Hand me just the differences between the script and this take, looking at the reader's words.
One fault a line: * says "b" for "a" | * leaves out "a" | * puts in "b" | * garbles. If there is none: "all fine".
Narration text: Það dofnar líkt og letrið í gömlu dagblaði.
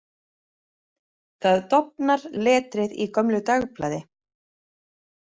* leaves out "líkt"